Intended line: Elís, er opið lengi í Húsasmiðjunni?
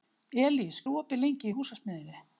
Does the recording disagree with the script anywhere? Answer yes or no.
no